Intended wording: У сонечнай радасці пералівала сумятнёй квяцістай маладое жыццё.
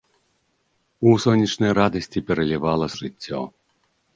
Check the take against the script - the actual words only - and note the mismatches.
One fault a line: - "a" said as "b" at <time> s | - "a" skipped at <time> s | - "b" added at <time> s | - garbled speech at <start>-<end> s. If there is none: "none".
- "сумятнёй квяцістай маладое" skipped at 2.9 s